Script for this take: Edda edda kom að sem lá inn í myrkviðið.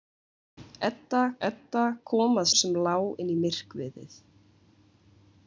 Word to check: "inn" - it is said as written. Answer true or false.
true